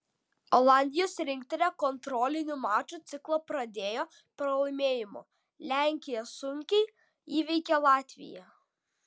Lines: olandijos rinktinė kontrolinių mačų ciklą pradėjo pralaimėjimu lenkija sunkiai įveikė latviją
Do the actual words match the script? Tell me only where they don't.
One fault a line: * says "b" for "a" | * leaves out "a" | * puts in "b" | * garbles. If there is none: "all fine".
all fine